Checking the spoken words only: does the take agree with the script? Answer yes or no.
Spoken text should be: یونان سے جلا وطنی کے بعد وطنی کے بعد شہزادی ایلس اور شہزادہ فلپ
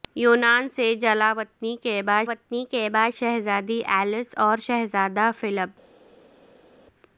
yes